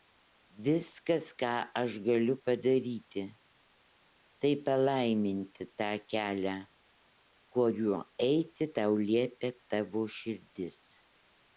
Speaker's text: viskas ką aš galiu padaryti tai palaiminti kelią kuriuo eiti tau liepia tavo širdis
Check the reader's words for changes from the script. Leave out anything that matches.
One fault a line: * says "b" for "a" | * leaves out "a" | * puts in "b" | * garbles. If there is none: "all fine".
* puts in "tą"